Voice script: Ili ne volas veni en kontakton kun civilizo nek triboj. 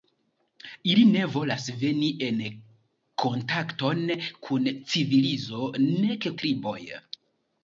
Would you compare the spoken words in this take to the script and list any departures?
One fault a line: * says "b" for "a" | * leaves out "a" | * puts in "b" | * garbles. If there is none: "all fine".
all fine